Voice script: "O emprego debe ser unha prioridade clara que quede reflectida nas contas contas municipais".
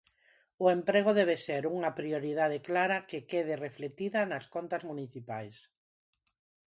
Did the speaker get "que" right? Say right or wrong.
right